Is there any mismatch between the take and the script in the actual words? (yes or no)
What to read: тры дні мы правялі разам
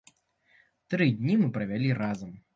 no